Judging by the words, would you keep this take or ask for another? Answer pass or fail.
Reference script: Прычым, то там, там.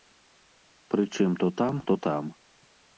fail